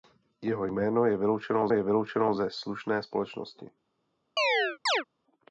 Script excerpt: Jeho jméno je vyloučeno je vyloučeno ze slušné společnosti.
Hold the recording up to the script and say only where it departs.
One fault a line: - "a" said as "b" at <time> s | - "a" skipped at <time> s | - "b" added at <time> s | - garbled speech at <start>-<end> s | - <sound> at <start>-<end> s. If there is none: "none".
- chirp at 4.4-5.0 s